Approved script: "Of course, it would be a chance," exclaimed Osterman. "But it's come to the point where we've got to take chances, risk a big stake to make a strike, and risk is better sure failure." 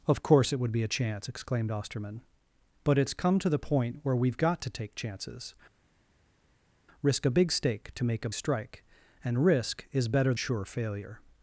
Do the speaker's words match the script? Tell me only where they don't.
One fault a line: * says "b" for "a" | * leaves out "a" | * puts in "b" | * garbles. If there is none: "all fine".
all fine